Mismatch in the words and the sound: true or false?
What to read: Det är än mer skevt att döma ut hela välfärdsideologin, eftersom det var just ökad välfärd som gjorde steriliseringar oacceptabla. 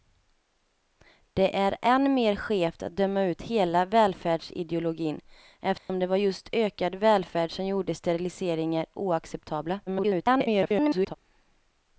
true